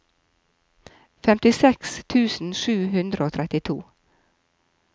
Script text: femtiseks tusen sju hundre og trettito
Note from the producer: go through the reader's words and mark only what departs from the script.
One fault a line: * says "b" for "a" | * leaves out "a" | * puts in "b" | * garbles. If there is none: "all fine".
all fine